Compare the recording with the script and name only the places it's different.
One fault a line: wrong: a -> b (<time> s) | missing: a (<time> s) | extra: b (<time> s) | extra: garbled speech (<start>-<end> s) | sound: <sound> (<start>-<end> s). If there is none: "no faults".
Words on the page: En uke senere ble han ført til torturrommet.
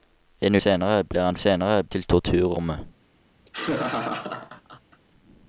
missing: uke (0.6 s)
wrong: ført -> senere (1.3 s)
sound: laugh (3.5-5.0 s)